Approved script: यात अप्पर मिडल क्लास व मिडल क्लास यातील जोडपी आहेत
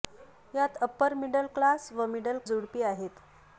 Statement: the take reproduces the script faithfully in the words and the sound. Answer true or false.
false